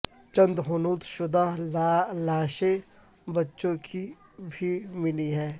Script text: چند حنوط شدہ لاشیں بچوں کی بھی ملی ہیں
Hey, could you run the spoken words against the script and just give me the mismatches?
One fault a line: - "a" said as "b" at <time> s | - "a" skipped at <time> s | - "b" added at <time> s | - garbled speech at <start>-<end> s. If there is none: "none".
none